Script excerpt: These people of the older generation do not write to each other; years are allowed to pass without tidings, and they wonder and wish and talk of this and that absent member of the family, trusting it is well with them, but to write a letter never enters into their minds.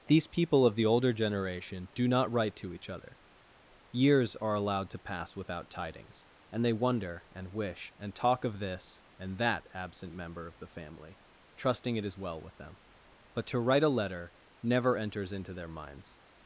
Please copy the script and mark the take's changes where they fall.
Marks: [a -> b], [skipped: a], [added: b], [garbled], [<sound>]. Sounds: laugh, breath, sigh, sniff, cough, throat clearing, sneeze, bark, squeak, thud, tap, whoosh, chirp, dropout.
These people of the older generation do not write to each other; years are allowed to pass without tidings, and they wonder and wish and talk of this and that absent member of the family, trusting it is well with them, but to write a letter never enters into their minds.